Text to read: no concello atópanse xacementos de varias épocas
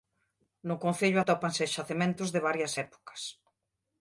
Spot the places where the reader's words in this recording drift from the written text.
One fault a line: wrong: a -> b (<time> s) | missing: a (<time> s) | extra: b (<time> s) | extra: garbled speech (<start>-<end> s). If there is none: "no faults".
no faults